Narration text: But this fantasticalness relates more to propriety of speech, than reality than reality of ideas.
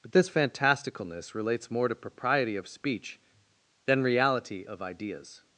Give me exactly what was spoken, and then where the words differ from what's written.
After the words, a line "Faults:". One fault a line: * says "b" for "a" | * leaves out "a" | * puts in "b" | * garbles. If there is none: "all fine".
But this fantasticalness relates more to propriety of speech, than reality of ideas.
Faults:
* leaves out "than reality"